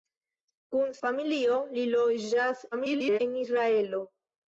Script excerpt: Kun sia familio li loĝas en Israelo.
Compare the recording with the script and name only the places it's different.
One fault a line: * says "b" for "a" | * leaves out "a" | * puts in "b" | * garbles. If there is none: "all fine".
* leaves out "sia"
* garbles